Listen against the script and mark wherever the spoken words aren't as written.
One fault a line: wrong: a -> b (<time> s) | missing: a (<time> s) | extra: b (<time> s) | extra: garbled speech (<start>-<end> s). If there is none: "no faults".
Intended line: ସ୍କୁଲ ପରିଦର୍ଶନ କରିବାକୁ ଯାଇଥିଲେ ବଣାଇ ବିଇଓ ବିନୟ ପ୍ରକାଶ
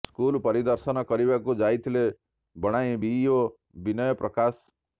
no faults